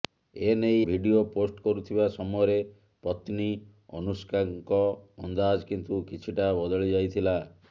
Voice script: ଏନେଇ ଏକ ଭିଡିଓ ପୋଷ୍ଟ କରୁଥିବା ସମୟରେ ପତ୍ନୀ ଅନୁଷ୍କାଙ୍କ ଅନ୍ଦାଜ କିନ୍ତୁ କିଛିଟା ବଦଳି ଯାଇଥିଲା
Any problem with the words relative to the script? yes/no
yes